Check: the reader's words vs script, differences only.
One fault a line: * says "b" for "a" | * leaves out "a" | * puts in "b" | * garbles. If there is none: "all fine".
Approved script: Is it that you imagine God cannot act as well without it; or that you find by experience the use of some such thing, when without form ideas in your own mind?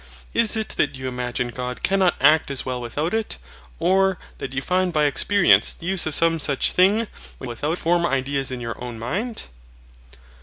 all fine